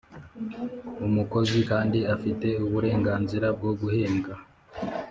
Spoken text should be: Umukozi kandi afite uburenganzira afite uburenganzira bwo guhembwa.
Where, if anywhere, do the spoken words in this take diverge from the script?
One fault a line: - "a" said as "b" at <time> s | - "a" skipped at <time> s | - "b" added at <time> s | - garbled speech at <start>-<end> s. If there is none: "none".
- "afite uburenganzira" skipped at 3.5 s